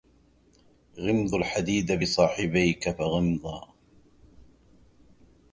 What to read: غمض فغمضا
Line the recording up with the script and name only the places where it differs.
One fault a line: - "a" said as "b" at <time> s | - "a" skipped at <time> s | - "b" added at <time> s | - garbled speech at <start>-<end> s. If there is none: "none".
- "الحديد بصاحبيك" added at 1.3 s